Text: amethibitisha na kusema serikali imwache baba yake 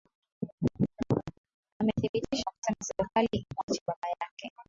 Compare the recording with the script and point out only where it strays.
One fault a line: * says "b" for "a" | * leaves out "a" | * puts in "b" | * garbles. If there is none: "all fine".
all fine